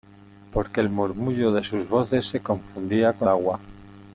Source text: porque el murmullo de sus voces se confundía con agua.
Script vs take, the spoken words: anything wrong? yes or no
no